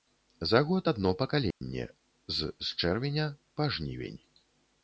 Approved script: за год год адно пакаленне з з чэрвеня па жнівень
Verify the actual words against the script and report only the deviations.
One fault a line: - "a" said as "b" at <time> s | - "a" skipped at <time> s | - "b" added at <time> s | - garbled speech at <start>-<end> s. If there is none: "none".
- "год" skipped at 0.9 s